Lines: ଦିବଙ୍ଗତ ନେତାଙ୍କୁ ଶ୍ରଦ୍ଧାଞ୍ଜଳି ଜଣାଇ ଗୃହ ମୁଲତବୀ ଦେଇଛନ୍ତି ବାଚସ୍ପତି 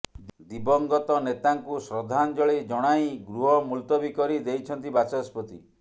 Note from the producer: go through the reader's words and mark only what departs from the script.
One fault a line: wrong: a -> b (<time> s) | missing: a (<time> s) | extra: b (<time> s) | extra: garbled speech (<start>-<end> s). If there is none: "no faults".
extra: କରି (4.2 s)